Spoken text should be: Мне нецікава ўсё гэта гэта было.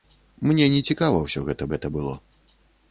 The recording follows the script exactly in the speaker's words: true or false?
true